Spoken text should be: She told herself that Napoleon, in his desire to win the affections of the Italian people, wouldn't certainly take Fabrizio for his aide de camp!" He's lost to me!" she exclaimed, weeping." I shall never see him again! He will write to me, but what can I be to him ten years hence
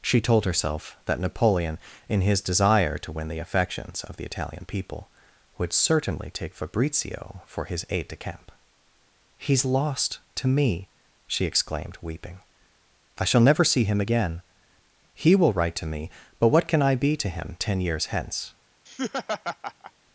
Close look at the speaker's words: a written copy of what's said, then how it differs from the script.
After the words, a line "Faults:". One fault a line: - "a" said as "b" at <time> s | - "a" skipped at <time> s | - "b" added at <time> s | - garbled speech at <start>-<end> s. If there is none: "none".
She told herself that Napoleon, in his desire to win the affections of the Italian people, would certainly take Fabrizio for his aide de camp!" He's lost to me!" she exclaimed, weeping." I shall never see him again! He will write to me, but what can I be to him ten years hence
Faults:
- "wouldn't" said as "would" at 5.6 s